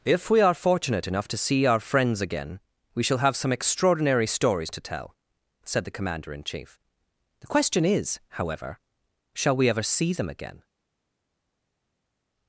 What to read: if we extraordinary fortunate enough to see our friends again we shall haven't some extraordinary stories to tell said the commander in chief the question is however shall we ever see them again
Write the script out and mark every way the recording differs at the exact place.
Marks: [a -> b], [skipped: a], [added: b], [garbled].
if we [extraordinary -> are] fortunate enough to see our friends again we shall [haven't -> have] some extraordinary stories to tell said the commander in chief the question is however shall we ever see them again